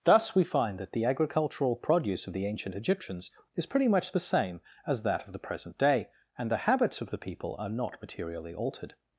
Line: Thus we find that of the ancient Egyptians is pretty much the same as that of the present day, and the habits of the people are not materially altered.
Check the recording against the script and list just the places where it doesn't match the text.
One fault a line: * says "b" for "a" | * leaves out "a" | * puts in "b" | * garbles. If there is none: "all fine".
* puts in "the agricultural produce"